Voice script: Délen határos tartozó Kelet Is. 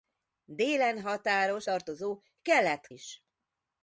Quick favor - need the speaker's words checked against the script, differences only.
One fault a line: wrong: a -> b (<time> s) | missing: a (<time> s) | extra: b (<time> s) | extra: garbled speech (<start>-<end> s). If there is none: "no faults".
no faults